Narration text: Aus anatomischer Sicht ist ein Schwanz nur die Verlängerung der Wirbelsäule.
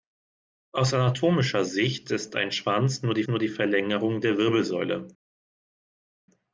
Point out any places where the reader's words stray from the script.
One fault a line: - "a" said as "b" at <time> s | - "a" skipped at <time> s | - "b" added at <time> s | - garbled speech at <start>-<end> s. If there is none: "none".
- "nur die" added at 3.3 s